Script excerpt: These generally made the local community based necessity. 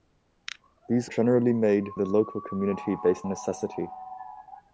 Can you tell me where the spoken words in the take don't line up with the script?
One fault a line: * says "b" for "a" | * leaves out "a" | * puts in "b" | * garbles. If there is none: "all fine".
all fine